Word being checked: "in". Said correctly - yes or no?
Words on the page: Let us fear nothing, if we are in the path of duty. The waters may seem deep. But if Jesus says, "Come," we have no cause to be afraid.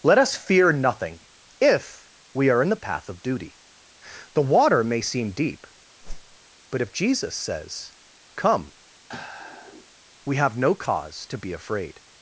yes